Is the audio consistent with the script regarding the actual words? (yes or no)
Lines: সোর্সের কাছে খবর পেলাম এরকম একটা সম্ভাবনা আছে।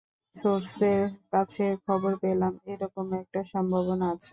yes